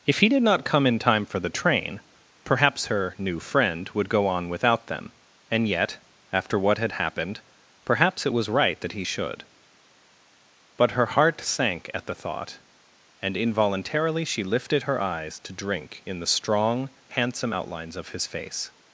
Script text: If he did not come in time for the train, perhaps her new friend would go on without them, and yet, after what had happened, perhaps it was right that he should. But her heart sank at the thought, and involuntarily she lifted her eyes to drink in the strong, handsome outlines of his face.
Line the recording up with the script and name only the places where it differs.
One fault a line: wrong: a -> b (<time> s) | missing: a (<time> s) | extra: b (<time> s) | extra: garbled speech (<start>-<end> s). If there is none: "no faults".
no faults